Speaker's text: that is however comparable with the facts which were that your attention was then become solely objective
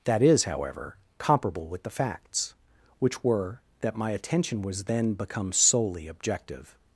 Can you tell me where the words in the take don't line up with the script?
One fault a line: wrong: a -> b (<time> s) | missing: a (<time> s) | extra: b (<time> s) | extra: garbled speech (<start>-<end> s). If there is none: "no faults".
wrong: your -> my (4.0 s)